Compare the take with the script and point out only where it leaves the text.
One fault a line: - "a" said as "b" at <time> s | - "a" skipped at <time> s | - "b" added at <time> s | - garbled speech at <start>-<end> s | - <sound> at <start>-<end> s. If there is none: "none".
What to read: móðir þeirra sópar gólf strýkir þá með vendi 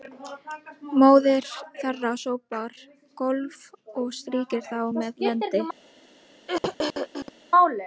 - "og" added at 4.0 s
- throat clearing at 6.5-7.3 s